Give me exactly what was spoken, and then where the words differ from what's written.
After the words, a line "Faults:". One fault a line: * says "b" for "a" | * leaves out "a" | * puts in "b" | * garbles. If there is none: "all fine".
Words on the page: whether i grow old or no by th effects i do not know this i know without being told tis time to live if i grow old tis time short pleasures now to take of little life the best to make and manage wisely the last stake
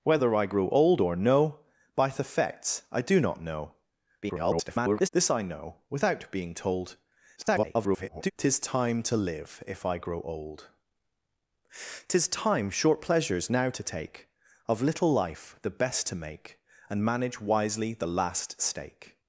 whether i grow old or no by th effects i do not know [garbled] this i know without being told [garbled] tis time to live if i grow old tis time short pleasures now to take of little life the best to make and manage wisely the last stake
Faults:
* garbles
* garbles